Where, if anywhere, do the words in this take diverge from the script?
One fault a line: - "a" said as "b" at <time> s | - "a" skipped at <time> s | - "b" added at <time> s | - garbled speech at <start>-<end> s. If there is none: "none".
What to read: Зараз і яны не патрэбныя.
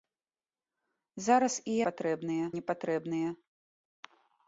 - "яны" said as "патрэбныя" at 1.9 s